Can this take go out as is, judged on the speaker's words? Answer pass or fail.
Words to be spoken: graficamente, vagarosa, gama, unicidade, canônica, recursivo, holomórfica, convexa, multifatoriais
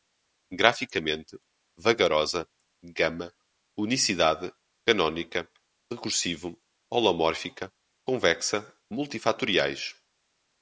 pass